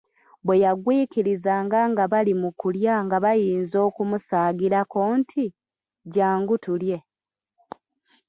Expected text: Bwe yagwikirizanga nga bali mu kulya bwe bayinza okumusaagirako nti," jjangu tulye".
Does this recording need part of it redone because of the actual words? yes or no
yes